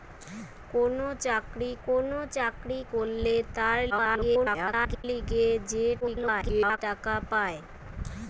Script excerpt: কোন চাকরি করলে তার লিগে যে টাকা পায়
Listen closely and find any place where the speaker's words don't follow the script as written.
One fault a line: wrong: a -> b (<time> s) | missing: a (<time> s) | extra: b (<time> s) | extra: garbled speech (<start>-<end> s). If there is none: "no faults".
extra: কোন চাকরি (1.8 s)
extra: garbled speech (3.9-5.0 s)
extra: garbled speech (6.0-6.8 s)